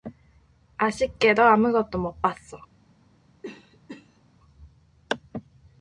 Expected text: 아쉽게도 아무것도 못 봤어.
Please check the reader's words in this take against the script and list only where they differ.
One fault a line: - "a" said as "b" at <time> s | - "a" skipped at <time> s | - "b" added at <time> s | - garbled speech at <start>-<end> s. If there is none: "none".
none